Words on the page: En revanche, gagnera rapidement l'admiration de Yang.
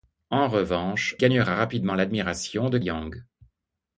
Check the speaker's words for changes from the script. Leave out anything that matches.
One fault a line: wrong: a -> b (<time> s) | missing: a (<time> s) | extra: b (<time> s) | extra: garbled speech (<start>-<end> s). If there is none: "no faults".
no faults